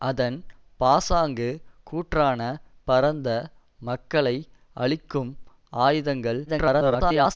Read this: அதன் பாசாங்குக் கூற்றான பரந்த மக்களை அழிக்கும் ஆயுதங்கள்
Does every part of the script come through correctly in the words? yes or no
no